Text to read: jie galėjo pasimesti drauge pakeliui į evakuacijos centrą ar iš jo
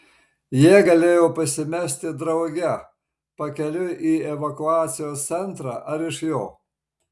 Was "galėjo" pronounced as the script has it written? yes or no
yes